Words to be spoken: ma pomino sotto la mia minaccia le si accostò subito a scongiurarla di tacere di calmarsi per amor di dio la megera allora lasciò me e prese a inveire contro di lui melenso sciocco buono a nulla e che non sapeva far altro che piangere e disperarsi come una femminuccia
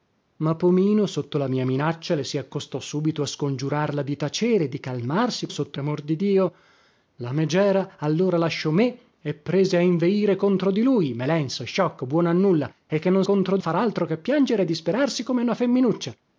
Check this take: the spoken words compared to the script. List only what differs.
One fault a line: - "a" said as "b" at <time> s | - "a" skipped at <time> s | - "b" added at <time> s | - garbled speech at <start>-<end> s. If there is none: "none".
- "per" said as "sotto" at 5.5 s
- "sapeva" said as "contro" at 13.2 s